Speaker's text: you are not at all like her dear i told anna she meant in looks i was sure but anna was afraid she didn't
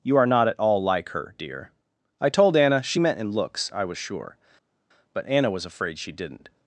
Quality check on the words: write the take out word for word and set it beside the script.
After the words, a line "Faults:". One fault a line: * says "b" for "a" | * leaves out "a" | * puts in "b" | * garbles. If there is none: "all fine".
you are not at all like her dear i told anna she meant in looks i was sure but anna was afraid she didn't
Faults:
all fine